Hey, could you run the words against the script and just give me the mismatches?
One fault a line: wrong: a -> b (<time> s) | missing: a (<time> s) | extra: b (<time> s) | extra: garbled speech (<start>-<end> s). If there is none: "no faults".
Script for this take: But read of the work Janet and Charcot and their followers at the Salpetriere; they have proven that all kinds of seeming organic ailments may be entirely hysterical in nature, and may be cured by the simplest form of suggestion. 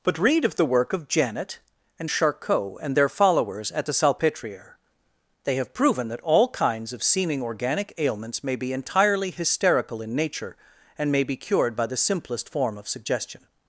extra: of (0.9 s)